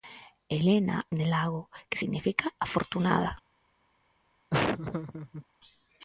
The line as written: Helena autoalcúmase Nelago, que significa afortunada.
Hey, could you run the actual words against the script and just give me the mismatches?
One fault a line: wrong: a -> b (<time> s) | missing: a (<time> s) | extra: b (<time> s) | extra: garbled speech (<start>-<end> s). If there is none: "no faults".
missing: autoalcúmase (1.0 s)